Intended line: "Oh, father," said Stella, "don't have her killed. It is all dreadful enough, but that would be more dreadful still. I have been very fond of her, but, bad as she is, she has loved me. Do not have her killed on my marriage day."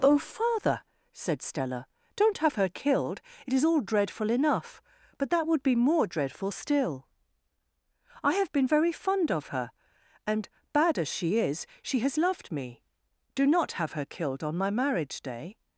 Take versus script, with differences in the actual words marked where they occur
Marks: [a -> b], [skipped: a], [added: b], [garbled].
"Oh, father," said Stella, "don't have her killed. It is all dreadful enough, but that would be more dreadful still. I have been very fond of her, [but, -> and] bad as she is, she has loved me. Do not have her killed on my marriage day."